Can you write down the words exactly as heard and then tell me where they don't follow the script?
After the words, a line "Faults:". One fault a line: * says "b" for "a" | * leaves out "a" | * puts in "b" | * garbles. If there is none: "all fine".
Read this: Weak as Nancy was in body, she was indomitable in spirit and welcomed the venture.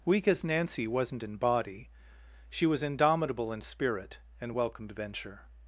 Weak as Nancy wasn't in body, she was indomitable in spirit and welcomed venture.
Faults:
* says "wasn't" for "was"
* leaves out "the"